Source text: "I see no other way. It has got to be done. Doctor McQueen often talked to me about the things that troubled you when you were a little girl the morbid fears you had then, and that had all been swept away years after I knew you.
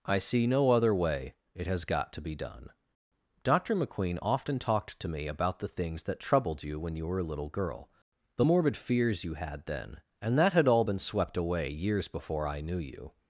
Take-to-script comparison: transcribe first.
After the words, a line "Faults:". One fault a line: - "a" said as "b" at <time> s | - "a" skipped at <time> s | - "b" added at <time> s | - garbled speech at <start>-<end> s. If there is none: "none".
"I see no other way. It has got to be done. Doctor McQueen often talked to me about the things that troubled you when you were a little girl the morbid fears you had then, and that had all been swept away years before I knew you.
Faults:
- "after" said as "before" at 12.1 s